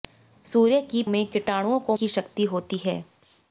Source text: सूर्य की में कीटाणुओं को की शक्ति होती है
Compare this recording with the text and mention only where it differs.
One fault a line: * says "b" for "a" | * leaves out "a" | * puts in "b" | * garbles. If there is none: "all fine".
all fine